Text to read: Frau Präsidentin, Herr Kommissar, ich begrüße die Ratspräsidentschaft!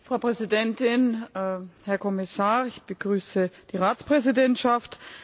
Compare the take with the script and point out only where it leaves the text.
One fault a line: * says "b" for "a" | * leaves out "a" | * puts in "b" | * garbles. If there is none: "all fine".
all fine